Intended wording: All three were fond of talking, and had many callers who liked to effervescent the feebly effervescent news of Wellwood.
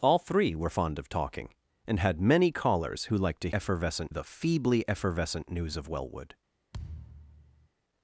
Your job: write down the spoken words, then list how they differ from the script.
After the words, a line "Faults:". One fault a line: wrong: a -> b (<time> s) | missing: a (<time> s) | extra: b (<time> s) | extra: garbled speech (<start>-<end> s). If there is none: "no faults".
All three were fond of talking, and had many callers who liked to effervescent the feebly effervescent news of Wellwood.
Faults:
no faults